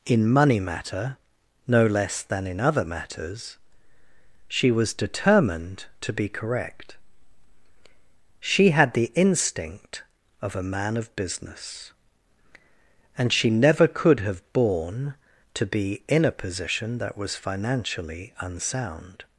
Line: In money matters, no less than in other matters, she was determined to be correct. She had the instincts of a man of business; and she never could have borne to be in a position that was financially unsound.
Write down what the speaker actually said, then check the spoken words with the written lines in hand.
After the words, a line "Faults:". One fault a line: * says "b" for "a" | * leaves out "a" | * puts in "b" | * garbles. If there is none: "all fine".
In money matter, no less than in other matters, she was determined to be correct. She had the instinct of a man of business; and she never could have borne to be in a position that was financially unsound.
Faults:
* says "matter" for "matters"
* says "instinct" for "instincts"